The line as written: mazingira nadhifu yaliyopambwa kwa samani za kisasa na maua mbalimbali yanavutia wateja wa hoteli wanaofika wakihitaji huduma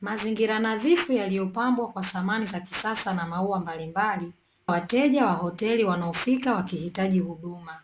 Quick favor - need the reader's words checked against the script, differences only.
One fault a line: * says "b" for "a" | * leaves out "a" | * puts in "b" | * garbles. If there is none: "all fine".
* leaves out "yanavutia"